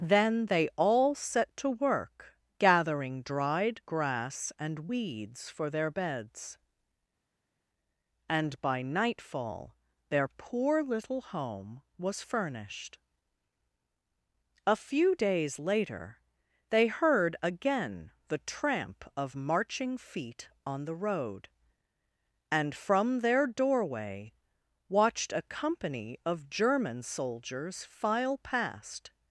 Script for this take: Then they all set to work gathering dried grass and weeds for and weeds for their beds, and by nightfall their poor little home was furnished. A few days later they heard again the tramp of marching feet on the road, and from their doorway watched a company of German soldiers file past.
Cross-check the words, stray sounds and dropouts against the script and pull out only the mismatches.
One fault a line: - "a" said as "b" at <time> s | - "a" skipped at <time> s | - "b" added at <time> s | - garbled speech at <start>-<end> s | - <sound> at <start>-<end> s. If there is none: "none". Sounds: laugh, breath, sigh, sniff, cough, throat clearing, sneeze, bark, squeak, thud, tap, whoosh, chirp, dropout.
- "and weeds for" skipped at 5.7 s